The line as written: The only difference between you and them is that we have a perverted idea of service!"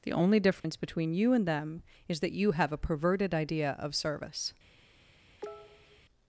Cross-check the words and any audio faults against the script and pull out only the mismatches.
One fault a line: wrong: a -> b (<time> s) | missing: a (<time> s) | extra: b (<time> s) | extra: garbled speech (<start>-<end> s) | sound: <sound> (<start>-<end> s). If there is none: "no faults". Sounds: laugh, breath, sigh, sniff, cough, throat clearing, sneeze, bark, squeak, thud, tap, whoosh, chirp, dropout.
sound: dropout (0.6-0.6 s)
wrong: we -> you (2.3 s)
sound: cough (5.4-6.0 s)